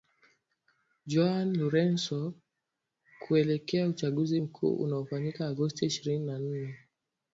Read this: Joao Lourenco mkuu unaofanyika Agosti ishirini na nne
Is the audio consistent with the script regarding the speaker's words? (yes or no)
no